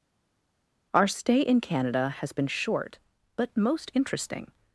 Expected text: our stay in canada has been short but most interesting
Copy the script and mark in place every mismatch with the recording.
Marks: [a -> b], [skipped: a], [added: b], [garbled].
our stay in canada has been short but most interesting